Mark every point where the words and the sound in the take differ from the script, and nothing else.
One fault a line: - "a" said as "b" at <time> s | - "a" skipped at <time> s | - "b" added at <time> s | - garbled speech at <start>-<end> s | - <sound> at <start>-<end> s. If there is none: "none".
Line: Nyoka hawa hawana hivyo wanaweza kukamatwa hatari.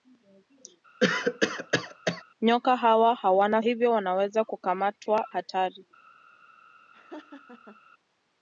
- cough at 1.0-2.2 s
- laugh at 6.9-7.8 s